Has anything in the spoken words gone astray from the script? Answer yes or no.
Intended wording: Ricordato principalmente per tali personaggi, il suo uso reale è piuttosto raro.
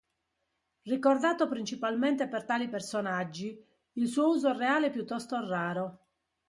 no